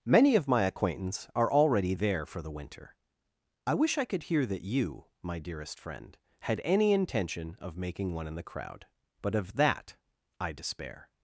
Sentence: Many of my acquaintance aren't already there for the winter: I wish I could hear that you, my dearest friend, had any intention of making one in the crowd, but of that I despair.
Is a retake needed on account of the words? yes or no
yes